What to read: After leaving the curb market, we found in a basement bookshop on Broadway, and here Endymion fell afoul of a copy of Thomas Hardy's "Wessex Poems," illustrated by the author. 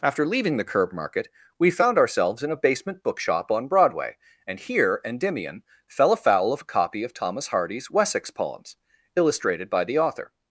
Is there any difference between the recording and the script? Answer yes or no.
yes